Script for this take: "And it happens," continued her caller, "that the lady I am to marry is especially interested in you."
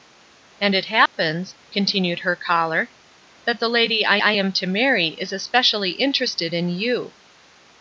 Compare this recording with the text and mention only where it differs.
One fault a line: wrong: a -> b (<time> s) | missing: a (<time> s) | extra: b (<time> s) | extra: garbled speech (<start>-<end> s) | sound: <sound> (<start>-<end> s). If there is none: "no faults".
sound: dropout (1.1-1.2 s)
extra: I (4.2 s)